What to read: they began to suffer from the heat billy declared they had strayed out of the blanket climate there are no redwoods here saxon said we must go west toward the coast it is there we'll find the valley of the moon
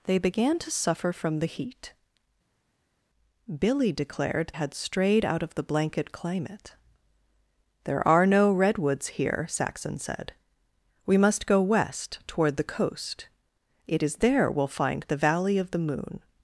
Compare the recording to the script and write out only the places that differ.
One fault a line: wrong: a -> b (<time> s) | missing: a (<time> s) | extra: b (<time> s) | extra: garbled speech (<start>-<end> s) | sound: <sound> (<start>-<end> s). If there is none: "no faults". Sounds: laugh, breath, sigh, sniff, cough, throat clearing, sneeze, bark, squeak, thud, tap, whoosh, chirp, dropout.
missing: they (4.5 s)